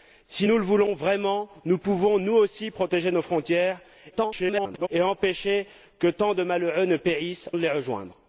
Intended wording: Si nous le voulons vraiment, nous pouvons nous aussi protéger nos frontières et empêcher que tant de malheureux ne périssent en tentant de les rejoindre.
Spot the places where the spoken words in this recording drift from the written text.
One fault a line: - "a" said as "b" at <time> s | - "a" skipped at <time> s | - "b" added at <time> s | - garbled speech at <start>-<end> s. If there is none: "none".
- garbled speech at 4.1-4.9 s
- "en tentant" skipped at 7.5 s